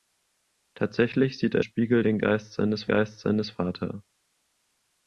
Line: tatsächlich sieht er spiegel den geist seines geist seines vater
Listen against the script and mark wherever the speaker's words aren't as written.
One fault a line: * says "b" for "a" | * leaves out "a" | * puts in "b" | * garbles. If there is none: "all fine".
all fine